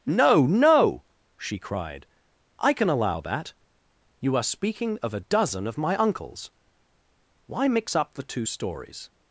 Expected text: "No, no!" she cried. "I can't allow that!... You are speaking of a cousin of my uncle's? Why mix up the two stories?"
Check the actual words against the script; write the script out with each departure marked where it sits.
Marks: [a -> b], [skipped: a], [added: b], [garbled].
"No, no!" she cried. "I [can't -> can] allow that!... You are speaking of a [cousin -> dozen] of my uncle's? Why mix up the two stories?"